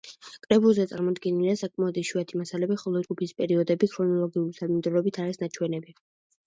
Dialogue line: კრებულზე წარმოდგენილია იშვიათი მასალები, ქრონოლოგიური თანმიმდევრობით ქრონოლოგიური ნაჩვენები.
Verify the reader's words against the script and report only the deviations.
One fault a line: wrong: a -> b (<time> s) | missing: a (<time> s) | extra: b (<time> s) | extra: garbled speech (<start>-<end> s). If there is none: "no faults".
extra: საკმაოდ (1.6 s)
extra: ხოლო ჯგუფის პერიოდები (2.8 s)
wrong: ქრონოლოგიური -> არის (5.3 s)